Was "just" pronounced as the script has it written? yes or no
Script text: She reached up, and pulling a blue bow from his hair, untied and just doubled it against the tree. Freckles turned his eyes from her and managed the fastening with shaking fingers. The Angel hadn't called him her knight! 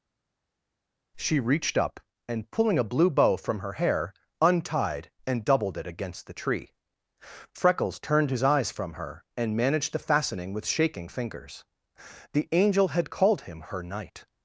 no